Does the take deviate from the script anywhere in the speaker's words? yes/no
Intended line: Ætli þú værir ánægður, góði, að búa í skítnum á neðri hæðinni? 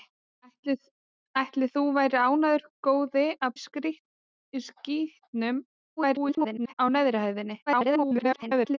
yes